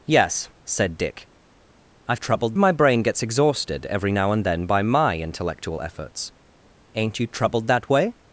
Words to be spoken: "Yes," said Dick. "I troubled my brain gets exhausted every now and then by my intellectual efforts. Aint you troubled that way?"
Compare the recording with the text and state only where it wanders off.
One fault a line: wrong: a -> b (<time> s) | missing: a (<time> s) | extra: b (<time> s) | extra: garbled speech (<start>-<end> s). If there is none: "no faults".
no faults